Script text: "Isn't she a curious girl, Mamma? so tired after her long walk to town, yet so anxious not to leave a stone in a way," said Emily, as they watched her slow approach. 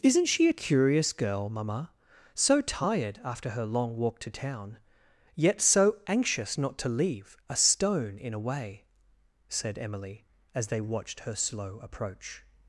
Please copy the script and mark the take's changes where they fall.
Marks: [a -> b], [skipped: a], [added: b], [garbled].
"Isn't she a curious girl, Mamma? so tired after her long walk to town, yet so anxious not to leave a stone in a way," said Emily, as they watched her slow approach.